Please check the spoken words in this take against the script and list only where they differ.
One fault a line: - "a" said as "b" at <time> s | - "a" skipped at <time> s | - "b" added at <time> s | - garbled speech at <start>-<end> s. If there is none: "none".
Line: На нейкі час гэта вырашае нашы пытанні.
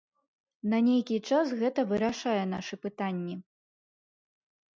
none